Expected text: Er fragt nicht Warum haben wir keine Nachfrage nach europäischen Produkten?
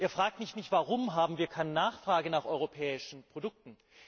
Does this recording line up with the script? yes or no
no